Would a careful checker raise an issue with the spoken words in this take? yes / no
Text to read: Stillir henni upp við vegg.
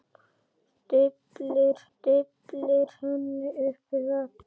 yes